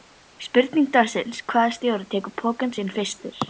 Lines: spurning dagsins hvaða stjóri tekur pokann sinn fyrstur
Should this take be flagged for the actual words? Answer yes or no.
no